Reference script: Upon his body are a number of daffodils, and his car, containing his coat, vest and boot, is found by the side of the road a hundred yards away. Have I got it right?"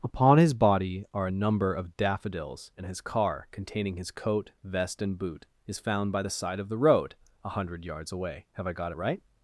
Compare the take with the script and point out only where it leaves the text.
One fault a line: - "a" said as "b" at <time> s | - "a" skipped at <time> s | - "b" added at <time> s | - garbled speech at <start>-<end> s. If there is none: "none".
none